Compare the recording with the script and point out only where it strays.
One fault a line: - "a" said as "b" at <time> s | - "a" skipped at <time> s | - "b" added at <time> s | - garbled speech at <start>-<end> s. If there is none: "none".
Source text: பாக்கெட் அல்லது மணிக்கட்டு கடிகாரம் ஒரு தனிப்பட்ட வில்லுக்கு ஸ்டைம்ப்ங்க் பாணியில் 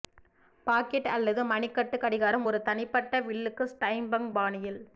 none